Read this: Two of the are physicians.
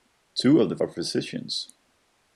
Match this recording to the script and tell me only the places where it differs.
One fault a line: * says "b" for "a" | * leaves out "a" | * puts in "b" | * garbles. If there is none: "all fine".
all fine